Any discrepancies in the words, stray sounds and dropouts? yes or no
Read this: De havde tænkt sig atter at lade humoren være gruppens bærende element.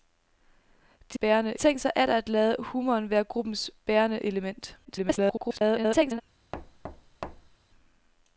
yes